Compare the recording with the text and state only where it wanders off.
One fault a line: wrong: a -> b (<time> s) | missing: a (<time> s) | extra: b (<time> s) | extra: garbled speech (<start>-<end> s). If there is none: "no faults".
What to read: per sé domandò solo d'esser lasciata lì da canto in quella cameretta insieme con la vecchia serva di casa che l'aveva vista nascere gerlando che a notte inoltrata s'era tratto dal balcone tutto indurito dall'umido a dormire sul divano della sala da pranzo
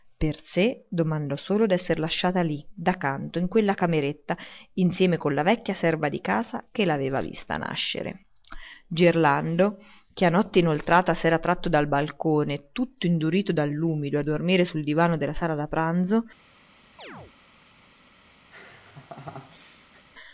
no faults